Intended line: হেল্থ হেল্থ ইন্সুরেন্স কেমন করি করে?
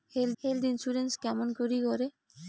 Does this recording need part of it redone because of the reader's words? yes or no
no